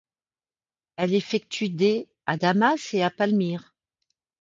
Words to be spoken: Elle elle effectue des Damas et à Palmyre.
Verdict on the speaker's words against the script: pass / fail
fail